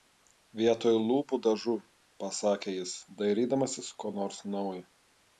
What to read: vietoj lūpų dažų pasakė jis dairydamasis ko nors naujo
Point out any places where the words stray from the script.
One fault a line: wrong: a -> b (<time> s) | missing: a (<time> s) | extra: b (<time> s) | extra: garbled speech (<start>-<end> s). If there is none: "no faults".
no faults